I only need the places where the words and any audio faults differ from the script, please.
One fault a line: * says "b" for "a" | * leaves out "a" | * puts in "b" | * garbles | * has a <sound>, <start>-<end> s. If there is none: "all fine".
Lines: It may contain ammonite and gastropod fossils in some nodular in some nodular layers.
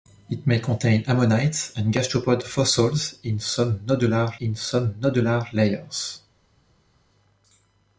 all fine